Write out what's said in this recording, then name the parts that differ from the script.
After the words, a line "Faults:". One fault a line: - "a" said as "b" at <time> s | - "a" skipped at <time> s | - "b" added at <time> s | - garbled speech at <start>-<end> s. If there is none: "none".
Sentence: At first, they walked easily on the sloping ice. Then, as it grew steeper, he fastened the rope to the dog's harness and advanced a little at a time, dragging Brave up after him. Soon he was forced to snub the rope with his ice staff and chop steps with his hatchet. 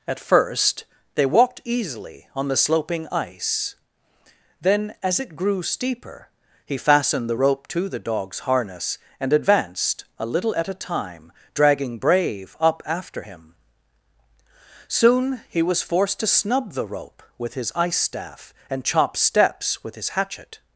At first, they walked easily on the sloping ice. Then, as it grew steeper, he fastened the rope to the dog's harness and advanced a little at a time, dragging Brave up after him. Soon he was forced to snub the rope with his ice staff and chop steps with his hatchet.
Faults:
none